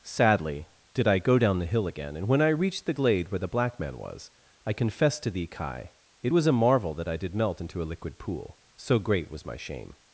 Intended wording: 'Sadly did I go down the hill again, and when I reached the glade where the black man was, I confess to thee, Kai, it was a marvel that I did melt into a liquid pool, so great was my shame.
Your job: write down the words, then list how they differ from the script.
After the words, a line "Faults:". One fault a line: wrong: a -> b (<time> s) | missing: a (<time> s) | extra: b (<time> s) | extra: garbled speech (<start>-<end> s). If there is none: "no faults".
'Sadly did I go down the hill again, and when I reached the glade where the black man was, I confess to thee, Kai, it was a marvel that I did melt into a liquid pool, so great was my shame.
Faults:
no faults